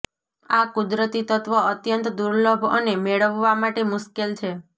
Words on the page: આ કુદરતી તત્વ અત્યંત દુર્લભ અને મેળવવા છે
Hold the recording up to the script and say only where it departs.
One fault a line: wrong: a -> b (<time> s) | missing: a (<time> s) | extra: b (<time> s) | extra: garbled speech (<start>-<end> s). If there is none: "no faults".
extra: માટે મુશ્કેલ (3.6 s)